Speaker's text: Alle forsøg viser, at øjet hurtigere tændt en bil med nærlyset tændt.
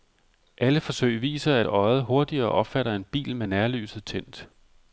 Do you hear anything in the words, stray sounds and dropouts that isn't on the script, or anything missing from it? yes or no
yes